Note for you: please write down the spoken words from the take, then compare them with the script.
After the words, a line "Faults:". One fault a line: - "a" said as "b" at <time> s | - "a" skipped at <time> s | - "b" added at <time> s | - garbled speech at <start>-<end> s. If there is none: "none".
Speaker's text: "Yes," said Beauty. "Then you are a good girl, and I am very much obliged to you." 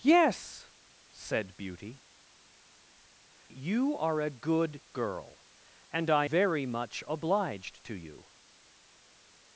"Yes," said Beauty. "You are a good girl, and I very much obliged to you."
Faults:
- "Then" skipped at 2.0 s
- "am" skipped at 6.3 s